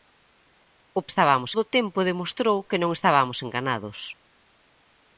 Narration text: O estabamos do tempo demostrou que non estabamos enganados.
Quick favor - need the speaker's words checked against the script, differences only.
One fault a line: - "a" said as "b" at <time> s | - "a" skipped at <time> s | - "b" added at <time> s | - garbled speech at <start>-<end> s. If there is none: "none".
none